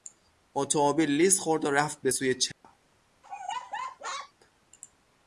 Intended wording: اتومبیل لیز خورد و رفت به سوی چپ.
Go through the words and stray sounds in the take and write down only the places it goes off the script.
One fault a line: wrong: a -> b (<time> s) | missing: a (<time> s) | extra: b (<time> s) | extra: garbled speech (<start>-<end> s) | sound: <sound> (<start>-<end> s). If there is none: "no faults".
sound: dropout (2.5-2.6 s)
sound: laugh (3.2-4.3 s)